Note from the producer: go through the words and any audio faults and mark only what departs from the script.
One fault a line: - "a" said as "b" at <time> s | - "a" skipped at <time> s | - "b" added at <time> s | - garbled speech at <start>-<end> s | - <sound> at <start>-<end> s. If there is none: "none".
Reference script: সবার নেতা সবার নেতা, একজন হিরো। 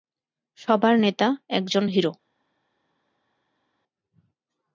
- "সবার নেতা" skipped at 1.3 s